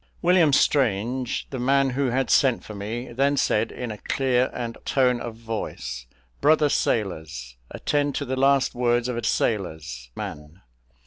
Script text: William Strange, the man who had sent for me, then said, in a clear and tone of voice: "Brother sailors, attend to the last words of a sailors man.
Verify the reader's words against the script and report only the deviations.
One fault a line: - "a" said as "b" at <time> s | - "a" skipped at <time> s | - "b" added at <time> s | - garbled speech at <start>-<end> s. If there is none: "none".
none